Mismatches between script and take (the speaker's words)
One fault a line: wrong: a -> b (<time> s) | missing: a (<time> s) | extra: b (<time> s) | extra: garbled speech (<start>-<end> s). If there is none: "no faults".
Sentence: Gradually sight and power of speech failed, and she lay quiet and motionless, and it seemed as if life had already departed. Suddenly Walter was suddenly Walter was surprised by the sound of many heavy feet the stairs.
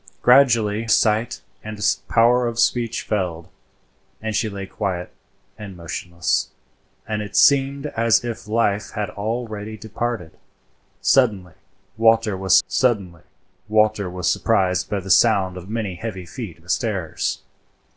no faults